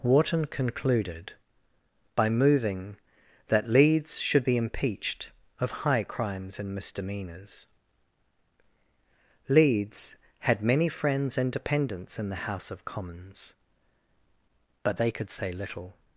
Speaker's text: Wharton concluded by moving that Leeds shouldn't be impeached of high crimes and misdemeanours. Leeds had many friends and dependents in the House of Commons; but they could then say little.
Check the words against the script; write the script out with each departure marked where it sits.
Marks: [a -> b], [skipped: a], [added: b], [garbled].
Wharton concluded by moving that Leeds [shouldn't -> should] be impeached of high crimes and misdemeanours. Leeds had many friends and dependents in the House of Commons; but they could [skipped: then] say little.